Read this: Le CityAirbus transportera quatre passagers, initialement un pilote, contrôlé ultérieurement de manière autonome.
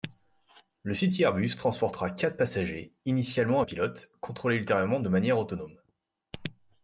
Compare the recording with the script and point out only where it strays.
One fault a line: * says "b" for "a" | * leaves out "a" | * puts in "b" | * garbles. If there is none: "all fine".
all fine